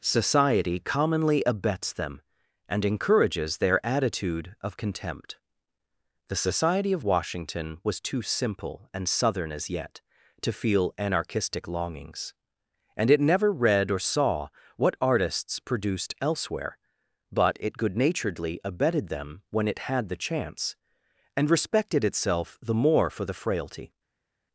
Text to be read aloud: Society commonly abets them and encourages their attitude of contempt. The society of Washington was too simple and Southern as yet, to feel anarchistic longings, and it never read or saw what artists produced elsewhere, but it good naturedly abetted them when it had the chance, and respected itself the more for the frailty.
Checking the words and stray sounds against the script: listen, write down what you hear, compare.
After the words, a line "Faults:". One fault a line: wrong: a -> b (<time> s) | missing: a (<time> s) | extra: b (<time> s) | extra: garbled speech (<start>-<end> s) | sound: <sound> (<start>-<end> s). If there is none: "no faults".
Society commonly abets them and encourages their attitude of contempt. The society of Washington was too simple and Southern as yet, to feel anarchistic longings, and it never read or saw what artists produced elsewhere, but it good naturedly abetted them when it had the chance, and respected itself the more for the frailty.
Faults:
no faults